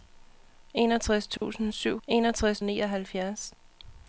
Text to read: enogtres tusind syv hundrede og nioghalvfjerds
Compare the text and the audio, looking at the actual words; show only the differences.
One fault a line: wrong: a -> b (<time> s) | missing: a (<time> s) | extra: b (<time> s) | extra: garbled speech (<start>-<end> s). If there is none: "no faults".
wrong: hundrede -> enogtres (2.1 s)